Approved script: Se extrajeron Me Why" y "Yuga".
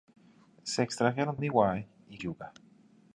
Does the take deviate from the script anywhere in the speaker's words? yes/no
no